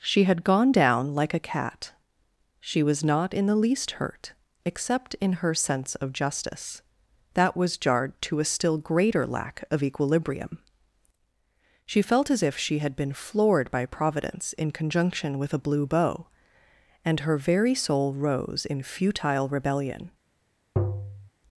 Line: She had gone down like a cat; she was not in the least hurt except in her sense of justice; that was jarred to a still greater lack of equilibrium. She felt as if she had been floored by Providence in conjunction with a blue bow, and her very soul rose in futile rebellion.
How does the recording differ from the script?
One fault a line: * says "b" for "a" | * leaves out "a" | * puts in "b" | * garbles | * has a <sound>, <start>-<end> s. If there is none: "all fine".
* has a tap, 20.8-21.3 s